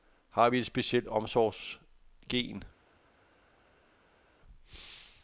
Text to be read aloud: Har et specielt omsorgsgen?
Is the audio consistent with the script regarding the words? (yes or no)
no